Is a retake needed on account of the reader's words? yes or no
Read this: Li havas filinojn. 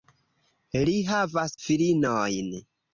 no